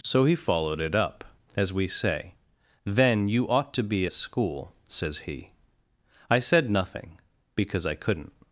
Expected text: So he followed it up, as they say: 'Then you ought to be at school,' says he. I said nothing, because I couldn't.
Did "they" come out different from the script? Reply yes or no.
yes